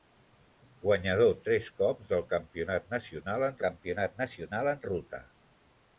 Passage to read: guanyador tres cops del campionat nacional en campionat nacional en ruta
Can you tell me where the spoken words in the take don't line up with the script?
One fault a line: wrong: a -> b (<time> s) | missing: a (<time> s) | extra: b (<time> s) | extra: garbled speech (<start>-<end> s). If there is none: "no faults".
no faults